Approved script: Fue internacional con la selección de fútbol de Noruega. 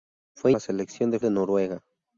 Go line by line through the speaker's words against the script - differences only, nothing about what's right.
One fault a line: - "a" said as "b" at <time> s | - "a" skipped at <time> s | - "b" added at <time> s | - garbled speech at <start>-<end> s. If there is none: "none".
- "internacional con" skipped at 0.5 s
- "fútbol" skipped at 1.2 s